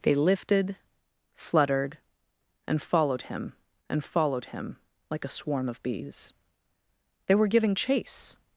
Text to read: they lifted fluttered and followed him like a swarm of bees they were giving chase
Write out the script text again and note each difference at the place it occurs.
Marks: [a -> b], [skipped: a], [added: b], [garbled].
they lifted fluttered and followed him [added: and followed him] like a swarm of bees they were giving chase